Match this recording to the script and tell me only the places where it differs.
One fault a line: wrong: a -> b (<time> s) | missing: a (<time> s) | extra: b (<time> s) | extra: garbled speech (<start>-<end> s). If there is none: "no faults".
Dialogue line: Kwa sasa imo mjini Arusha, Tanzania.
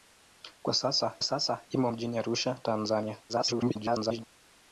extra: sasa (1.2 s)
extra: garbled speech (3.3-4.2 s)